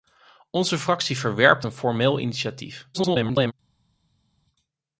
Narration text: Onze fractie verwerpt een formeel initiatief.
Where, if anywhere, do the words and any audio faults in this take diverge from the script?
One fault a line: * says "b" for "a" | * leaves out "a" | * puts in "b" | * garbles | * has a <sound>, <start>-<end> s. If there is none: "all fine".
* garbles